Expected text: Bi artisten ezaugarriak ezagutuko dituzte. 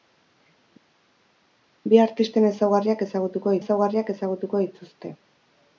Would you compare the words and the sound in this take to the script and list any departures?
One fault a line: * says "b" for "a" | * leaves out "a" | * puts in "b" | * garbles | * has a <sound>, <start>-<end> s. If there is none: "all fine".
* puts in "ezaugarriak ezagutuko"